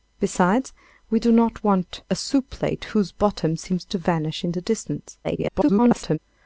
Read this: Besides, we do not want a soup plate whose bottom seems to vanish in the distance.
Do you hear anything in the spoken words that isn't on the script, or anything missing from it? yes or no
yes